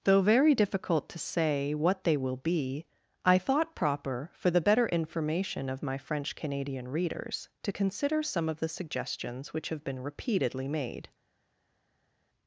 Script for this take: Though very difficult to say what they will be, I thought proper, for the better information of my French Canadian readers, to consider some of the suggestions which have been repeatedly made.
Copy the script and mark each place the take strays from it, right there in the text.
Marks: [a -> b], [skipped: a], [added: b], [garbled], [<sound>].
Though very difficult to say what they will be, I thought proper, for the better information of my French Canadian readers, to consider some of the suggestions which have been repeatedly made.